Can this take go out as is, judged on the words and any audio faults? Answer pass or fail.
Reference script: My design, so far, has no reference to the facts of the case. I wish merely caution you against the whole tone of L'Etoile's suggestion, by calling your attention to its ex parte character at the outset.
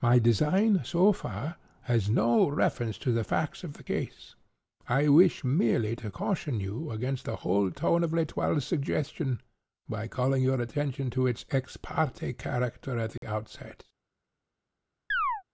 fail